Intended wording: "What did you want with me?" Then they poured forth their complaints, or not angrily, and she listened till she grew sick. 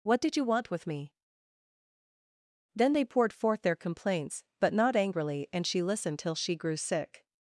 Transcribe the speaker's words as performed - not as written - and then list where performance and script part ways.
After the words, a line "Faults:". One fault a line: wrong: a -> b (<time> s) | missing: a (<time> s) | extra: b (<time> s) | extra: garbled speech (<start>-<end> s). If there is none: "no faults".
"What did you want with me?" Then they poured forth their complaints, but not angrily, and she listened till she grew sick.
Faults:
wrong: or -> but (4.6 s)